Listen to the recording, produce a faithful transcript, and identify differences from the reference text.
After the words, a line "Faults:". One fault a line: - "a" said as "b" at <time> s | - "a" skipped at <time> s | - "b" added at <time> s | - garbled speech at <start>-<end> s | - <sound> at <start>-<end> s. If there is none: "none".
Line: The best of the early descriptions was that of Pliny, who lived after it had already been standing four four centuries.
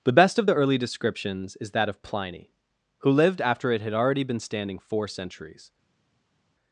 The best of the early descriptions is that of Pliny, who lived after it had already been standing four centuries.
Faults:
- "was" said as "is" at 1.6 s
- "four" skipped at 5.1 s